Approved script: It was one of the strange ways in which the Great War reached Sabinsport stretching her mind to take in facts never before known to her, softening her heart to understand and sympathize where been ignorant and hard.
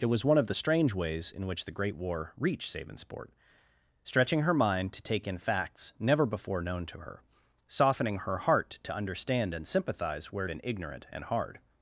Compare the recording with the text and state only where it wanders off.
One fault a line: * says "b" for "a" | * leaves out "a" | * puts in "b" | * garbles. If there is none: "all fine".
all fine